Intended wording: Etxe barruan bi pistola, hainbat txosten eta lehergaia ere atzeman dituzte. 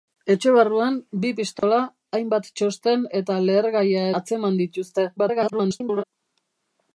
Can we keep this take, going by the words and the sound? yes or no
no